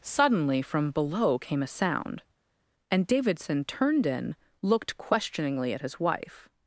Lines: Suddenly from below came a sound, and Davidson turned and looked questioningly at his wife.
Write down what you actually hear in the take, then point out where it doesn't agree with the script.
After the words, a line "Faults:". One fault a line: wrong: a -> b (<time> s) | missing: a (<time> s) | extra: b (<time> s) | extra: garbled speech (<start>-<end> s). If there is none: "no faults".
Suddenly from below came a sound, and Davidson turned in looked questioningly at his wife.
Faults:
wrong: and -> in (4.1 s)